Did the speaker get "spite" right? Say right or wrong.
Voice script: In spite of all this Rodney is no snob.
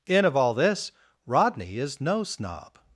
wrong